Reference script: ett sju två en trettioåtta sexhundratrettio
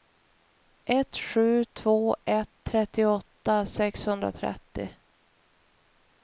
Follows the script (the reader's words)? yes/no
no